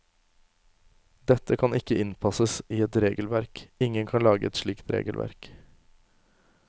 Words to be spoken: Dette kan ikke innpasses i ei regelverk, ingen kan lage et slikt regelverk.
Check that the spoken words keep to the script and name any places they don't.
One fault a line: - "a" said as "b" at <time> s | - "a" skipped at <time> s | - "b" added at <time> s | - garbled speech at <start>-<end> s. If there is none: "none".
- "ei" said as "et" at 2.9 s